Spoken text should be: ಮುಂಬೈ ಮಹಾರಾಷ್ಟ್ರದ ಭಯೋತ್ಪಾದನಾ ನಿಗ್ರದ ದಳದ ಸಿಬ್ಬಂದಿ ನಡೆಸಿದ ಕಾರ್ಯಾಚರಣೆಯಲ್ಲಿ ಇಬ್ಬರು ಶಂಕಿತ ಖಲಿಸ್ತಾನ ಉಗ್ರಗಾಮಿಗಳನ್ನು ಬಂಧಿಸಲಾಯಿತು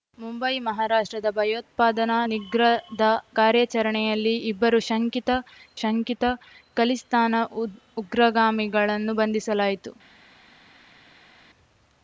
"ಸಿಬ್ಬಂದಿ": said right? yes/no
no